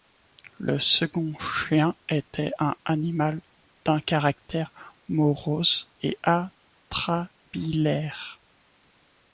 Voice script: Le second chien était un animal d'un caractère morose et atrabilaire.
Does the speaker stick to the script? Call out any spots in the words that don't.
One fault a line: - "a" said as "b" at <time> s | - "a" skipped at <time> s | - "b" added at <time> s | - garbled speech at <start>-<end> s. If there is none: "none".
none